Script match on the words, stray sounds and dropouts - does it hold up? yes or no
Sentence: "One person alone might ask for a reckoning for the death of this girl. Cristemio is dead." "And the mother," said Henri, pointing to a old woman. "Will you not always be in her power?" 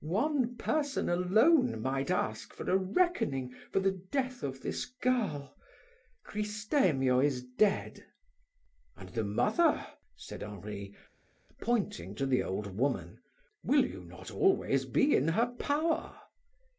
no